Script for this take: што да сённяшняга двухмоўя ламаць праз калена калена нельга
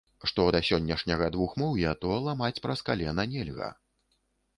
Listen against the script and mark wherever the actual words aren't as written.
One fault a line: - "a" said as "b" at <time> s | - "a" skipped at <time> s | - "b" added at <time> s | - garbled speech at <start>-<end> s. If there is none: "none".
- "то" added at 2.0 s
- "калена" skipped at 3.3 s